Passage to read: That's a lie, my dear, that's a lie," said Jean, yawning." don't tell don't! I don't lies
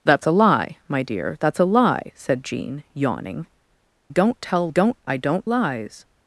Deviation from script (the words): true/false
false